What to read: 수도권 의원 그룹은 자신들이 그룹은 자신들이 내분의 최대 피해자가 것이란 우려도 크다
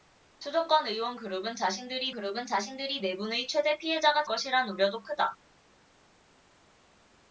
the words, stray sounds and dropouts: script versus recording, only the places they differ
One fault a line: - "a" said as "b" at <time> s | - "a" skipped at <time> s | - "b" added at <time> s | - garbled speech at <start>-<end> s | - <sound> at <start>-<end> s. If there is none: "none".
none